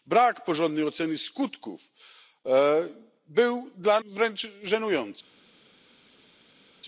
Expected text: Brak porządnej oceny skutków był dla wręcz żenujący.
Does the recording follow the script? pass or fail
pass